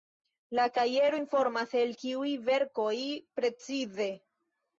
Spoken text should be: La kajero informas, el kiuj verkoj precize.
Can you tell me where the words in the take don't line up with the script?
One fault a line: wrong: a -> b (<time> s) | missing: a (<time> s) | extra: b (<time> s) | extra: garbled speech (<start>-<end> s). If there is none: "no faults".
no faults